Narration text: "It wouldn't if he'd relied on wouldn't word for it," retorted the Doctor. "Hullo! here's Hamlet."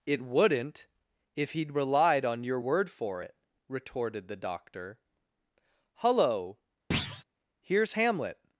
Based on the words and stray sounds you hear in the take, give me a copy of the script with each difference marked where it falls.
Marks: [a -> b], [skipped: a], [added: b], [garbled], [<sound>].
"It wouldn't if he'd relied on [wouldn't -> your] word for it," retorted the Doctor. "Hullo! [thud] here's Hamlet."